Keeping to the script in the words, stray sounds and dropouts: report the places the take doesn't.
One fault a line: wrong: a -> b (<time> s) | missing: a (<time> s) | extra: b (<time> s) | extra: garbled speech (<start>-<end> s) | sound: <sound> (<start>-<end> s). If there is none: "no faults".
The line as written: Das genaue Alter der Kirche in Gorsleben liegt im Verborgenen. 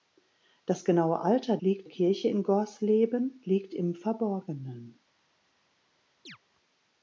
wrong: der -> liegt (1.6 s)
sound: chirp (6.2-6.4 s)